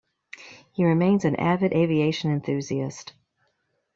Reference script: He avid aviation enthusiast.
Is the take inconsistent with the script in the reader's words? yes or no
yes